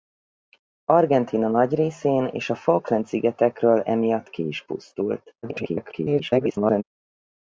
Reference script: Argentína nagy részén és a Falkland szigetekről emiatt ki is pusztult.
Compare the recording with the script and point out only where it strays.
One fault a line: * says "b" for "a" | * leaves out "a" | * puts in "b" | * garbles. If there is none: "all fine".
* garbles